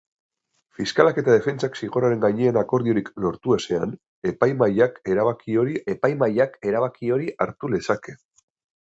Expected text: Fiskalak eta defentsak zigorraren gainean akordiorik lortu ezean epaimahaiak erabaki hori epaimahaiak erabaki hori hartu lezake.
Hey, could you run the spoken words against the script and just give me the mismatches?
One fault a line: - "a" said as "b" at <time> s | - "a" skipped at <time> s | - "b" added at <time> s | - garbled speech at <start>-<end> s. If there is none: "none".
none